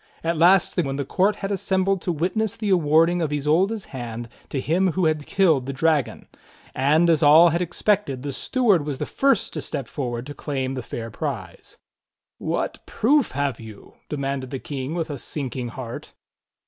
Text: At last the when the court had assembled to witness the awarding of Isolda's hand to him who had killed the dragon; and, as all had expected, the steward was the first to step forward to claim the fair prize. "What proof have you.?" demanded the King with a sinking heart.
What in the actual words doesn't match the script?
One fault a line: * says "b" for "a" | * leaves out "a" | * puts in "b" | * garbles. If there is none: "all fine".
all fine